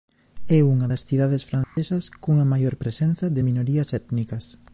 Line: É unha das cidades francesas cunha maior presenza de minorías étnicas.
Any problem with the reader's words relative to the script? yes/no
no